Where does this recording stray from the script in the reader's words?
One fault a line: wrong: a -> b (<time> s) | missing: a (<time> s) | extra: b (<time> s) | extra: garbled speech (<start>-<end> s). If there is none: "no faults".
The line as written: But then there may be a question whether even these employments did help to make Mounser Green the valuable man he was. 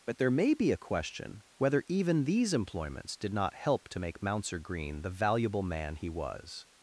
missing: then (0.2 s)
extra: not (3.3 s)